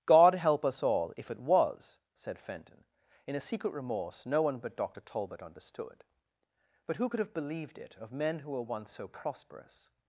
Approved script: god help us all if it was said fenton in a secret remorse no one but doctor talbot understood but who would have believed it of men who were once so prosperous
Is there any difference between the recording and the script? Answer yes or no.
yes